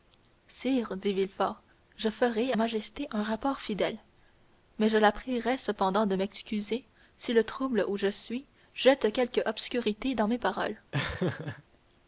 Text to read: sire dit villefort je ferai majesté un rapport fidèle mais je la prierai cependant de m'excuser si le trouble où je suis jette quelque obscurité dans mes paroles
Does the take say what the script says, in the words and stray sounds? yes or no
no